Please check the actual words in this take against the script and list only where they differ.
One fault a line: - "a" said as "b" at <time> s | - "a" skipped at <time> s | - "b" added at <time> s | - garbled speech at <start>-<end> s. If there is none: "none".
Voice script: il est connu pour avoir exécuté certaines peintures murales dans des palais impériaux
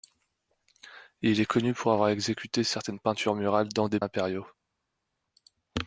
- "palais" skipped at 4.0 s